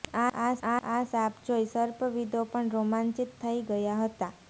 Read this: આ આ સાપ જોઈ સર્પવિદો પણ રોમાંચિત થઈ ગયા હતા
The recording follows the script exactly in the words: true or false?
true